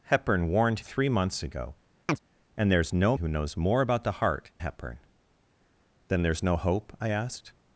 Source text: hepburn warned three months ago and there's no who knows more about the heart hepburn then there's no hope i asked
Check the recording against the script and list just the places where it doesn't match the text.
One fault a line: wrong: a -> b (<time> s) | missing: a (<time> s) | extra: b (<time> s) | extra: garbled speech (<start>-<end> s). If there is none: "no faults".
no faults